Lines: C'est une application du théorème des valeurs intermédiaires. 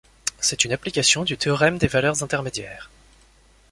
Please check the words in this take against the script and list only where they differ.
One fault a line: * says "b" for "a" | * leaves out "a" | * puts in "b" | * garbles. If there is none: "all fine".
all fine